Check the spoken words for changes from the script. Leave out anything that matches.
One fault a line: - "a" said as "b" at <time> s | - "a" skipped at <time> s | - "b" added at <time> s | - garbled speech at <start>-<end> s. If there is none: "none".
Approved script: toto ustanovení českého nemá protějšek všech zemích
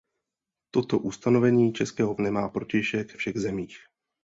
none